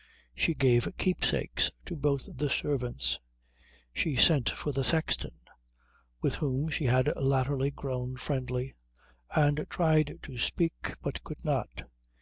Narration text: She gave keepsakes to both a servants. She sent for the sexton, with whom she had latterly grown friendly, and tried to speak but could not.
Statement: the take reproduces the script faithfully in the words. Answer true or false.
false